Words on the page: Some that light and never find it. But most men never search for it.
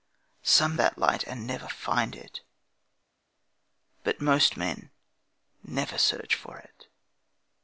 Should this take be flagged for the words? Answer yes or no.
no